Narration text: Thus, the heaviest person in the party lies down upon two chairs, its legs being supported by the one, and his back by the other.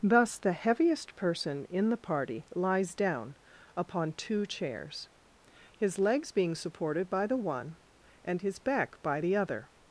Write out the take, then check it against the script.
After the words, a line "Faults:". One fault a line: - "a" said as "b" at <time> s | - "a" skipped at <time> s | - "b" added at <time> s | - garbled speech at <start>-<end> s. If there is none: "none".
Thus, the heaviest person in the party lies down upon two chairs, his legs being supported by the one, and his back by the other.
Faults:
- "its" said as "his" at 5.8 s